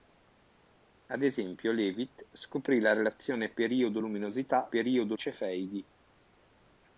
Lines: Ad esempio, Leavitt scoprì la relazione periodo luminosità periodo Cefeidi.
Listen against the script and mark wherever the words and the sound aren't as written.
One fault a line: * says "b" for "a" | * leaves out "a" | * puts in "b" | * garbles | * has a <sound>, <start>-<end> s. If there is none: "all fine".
all fine